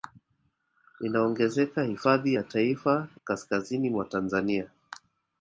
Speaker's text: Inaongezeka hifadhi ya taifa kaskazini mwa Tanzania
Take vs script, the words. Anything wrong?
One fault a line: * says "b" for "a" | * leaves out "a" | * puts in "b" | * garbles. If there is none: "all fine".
all fine